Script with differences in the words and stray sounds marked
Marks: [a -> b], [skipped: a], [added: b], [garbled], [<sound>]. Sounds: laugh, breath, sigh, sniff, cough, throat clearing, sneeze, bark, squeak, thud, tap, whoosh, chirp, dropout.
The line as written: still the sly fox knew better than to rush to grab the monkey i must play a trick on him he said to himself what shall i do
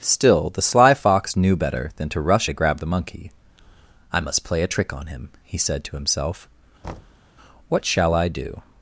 still the sly fox knew better than to rush to grab the monkey i must play a trick on him he said to himself [thud] what shall i do